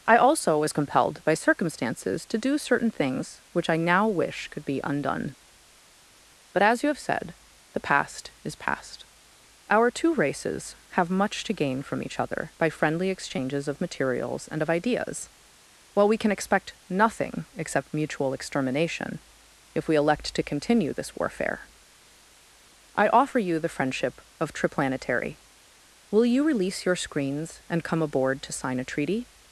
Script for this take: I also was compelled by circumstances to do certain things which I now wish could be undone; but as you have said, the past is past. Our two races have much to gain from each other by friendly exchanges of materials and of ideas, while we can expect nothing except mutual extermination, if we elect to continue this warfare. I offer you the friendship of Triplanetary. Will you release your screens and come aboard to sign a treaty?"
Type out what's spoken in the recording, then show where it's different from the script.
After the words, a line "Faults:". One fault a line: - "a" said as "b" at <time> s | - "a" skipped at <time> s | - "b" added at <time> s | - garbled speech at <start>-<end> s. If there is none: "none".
I also was compelled by circumstances to do certain things which I now wish could be undone; but as you have said, the past is past. Our two races have much to gain from each other by friendly exchanges of materials and of ideas, while we can expect nothing except mutual extermination, if we elect to continue this warfare. I offer you the friendship of Triplanetary. Will you release your screens and come aboard to sign a treaty?"
Faults:
none